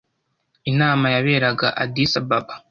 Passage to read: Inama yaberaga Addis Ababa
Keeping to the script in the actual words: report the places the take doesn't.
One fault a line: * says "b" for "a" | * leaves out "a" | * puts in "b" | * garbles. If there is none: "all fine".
all fine